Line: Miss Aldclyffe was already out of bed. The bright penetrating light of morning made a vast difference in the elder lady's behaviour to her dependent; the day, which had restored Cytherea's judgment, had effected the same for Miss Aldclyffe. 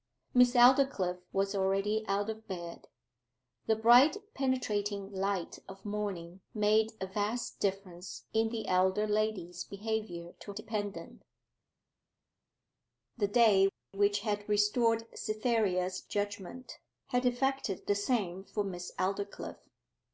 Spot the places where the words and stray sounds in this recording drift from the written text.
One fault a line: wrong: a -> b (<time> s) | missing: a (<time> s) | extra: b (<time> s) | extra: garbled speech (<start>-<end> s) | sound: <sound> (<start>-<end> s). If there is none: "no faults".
missing: her (10.5 s)